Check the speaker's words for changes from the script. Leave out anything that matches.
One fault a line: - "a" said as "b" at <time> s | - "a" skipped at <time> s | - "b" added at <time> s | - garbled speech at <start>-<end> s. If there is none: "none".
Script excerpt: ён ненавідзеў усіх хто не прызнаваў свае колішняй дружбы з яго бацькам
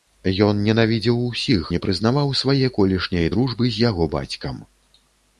- "хто" skipped at 1.7 s